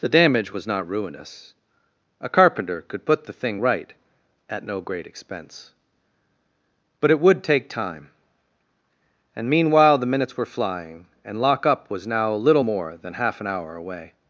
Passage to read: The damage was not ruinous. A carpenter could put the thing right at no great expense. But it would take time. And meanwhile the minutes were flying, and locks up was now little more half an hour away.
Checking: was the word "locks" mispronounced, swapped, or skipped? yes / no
yes